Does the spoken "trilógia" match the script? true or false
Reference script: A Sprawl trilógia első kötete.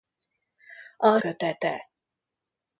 false